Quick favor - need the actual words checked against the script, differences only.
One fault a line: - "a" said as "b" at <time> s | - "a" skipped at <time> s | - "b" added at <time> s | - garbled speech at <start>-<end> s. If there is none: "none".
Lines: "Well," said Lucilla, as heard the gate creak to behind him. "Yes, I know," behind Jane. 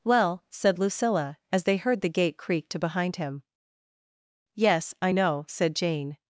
- "they" added at 1.6 s
- "behind" said as "said" at 5.5 s